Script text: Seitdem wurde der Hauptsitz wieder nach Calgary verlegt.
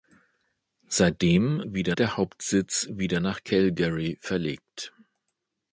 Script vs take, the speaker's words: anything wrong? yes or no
yes